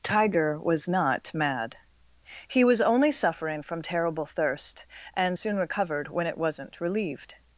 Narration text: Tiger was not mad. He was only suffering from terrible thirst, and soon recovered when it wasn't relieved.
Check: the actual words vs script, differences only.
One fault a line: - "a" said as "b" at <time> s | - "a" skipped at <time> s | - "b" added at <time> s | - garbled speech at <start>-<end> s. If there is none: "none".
none